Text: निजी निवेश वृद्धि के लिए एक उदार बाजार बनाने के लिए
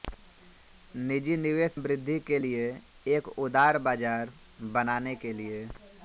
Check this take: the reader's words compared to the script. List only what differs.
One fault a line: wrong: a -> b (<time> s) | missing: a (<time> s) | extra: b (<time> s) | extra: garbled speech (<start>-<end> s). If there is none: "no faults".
no faults